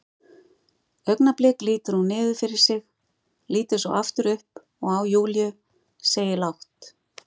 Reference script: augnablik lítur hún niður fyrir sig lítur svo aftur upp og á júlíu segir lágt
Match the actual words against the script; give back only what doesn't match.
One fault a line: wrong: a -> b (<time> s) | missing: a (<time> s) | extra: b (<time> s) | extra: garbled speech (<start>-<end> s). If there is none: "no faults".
no faults